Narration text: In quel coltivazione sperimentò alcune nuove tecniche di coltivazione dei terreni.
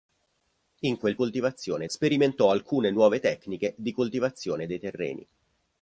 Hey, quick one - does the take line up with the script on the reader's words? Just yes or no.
yes